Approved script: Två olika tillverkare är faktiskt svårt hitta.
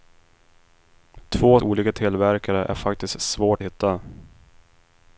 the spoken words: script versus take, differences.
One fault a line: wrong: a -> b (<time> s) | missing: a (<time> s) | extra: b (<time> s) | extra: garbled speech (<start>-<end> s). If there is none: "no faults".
no faults